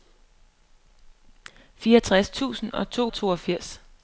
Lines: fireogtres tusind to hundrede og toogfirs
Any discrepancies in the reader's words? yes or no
yes